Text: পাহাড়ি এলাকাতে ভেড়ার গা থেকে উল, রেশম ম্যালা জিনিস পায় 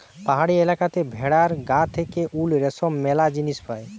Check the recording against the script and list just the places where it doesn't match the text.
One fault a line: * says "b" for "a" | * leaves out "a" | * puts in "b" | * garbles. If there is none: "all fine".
all fine